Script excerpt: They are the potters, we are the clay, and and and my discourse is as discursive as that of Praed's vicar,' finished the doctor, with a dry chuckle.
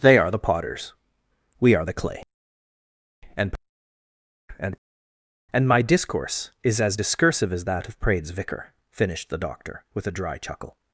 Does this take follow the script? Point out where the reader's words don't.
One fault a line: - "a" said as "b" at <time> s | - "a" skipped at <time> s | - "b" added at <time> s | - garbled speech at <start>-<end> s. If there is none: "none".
none